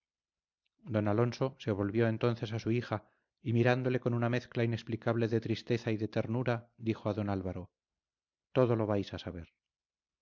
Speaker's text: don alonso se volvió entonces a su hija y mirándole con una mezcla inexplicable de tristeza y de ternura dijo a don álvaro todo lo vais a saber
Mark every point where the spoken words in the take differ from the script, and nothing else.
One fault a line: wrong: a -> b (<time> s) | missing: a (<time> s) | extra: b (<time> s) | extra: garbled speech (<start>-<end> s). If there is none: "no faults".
no faults